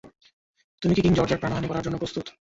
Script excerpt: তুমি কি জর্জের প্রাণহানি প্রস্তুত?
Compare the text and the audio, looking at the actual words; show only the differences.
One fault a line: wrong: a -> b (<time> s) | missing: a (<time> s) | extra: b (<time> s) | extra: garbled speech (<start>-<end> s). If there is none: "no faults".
extra: কিং (1.0 s)
extra: করার জন্য (1.7 s)